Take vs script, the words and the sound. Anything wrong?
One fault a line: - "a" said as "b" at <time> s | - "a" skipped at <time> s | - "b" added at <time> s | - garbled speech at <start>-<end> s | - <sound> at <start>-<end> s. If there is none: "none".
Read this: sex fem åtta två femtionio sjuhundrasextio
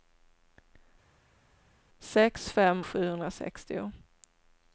- "åtta två femtionio" skipped at 2.9 s